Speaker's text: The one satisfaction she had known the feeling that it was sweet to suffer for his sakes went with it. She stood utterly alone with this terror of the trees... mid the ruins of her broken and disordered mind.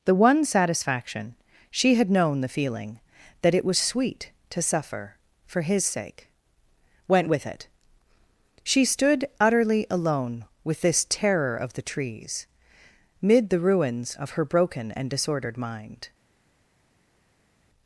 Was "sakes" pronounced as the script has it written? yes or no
no